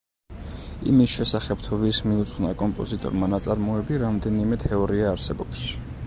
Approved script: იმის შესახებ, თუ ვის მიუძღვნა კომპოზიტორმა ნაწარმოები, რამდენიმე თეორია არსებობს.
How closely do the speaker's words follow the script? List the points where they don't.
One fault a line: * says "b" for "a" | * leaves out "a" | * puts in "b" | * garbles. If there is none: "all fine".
all fine